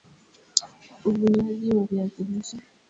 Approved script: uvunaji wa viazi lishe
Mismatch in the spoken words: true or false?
false